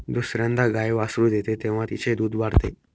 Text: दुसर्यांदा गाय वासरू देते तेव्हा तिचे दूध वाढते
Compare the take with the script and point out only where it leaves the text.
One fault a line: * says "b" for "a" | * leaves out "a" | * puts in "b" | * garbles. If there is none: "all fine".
all fine